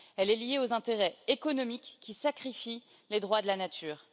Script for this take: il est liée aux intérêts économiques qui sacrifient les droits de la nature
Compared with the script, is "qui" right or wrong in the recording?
right